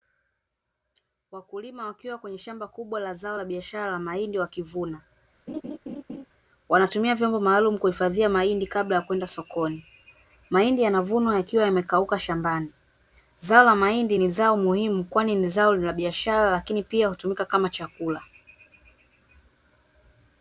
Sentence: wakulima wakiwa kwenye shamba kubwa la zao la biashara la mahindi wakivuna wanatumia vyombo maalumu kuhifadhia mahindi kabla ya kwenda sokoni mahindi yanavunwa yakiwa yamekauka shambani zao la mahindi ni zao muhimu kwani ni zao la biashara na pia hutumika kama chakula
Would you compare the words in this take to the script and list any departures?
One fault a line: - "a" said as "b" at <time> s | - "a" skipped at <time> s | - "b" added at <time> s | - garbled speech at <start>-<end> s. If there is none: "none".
- "na" said as "lakini" at 16.5 s